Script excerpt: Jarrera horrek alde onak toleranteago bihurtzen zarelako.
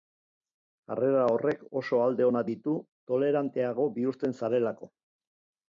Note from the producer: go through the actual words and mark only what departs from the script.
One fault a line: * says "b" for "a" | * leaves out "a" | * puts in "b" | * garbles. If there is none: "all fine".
* puts in "oso"
* puts in "ditu"